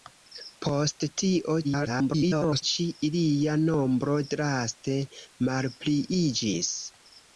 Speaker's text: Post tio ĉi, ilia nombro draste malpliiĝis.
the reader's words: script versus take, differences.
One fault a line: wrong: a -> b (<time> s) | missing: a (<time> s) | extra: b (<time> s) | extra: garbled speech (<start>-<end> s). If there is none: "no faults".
extra: garbled speech (1.6-2.6 s)